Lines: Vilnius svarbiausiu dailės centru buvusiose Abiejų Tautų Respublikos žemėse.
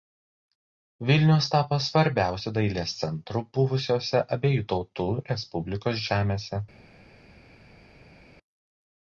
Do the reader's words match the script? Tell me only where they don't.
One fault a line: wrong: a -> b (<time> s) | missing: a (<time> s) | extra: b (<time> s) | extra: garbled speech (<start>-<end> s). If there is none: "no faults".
extra: tapo (1.5 s)